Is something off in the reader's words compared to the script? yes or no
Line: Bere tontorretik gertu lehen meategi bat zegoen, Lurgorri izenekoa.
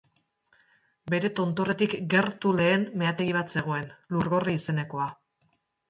no